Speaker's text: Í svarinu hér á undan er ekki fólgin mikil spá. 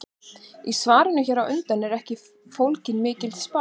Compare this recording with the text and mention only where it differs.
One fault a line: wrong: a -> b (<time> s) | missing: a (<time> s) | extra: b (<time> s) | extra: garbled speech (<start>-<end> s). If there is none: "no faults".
no faults